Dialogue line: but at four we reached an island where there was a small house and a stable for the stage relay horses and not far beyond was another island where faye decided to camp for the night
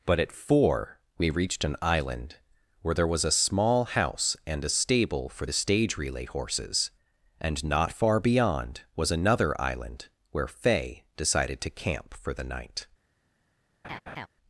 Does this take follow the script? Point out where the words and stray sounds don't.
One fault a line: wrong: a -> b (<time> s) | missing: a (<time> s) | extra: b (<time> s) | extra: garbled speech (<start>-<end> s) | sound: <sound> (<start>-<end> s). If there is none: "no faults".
sound: laugh (13.8-14.3 s)